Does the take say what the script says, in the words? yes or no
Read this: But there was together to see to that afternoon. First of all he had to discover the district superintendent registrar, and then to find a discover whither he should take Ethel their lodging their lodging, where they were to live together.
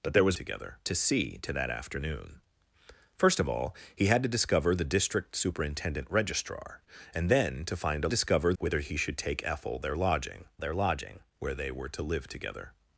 yes